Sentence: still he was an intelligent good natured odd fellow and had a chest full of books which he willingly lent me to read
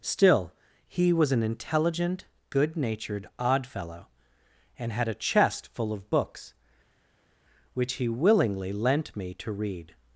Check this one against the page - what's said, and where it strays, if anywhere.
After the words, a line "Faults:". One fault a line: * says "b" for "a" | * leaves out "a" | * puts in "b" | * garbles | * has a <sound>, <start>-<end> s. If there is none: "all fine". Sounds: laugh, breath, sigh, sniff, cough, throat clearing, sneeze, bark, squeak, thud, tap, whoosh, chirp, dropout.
still he was an intelligent good natured odd fellow and had a chest full of books which he willingly lent me to read
Faults:
all fine